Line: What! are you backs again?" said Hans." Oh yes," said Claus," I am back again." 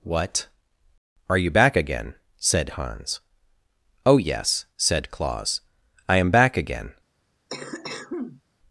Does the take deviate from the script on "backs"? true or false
true